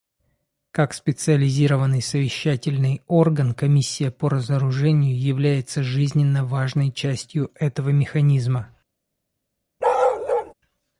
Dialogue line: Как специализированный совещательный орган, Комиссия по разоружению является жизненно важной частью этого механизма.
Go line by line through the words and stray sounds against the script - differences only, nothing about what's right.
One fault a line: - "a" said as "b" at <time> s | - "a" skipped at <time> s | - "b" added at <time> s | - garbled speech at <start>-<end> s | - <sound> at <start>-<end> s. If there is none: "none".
- bark at 9.8-10.5 s